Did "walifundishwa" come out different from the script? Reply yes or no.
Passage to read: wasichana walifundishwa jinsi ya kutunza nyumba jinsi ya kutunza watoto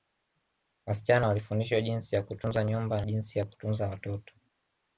no